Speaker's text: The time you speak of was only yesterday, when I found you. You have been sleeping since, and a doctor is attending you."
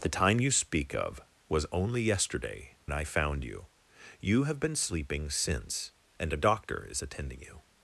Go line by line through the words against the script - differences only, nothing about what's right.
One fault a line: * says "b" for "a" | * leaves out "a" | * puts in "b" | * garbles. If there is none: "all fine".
* leaves out "when"